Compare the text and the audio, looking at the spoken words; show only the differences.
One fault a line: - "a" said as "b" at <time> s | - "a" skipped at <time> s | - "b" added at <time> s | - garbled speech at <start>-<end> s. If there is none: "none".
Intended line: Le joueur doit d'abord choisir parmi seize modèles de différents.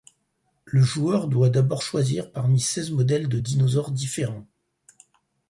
- "dinosaures" added at 3.4 s